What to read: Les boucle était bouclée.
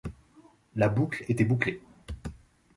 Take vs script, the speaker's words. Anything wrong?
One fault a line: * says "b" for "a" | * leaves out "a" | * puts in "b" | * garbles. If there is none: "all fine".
* says "La" for "Les"